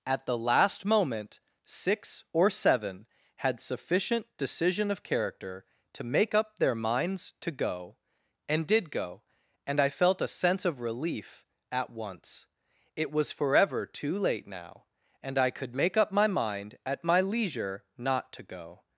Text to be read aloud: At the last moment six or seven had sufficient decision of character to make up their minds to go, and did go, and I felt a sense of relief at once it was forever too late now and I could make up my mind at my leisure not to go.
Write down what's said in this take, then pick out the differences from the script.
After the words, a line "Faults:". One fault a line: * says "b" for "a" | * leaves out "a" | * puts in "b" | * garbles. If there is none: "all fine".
At the last moment six or seven had sufficient decision of character to make up their minds to go, and did go, and I felt a sense of relief at once it was forever too late now and I could make up my mind at my leisure not to go.
Faults:
all fine